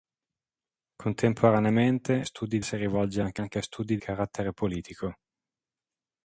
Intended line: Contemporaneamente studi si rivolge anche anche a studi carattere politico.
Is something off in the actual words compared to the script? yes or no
no